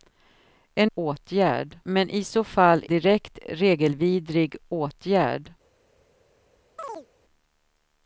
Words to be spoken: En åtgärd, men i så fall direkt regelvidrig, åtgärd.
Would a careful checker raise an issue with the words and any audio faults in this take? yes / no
yes